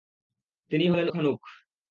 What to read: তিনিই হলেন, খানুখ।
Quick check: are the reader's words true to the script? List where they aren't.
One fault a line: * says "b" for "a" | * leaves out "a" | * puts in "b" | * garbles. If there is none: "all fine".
all fine